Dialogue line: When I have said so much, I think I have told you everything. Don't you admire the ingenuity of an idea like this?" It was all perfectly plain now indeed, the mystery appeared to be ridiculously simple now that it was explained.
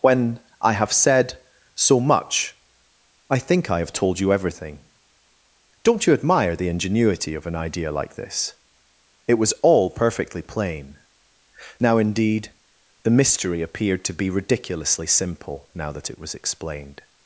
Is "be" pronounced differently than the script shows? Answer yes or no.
no